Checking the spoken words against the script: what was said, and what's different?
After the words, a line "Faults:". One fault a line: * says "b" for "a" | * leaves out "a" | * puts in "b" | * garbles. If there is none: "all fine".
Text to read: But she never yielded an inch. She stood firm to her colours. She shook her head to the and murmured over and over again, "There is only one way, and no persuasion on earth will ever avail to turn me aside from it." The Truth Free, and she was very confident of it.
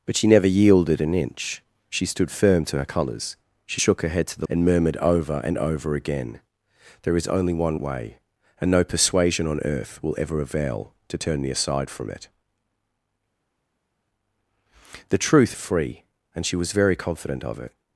But she never yielded an inch. She stood firm to her colours. She shook her head to the and murmured over and over again, "There is only one way, and no persuasion on earth will ever avail to turn me aside from it." The Truth Free, and she was very confident of it.
Faults:
all fine